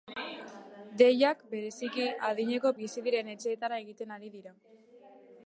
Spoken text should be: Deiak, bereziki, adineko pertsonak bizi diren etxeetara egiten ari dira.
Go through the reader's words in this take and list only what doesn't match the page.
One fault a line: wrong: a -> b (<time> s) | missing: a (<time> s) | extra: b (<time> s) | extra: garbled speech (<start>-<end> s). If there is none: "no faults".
missing: pertsonak (2.7 s)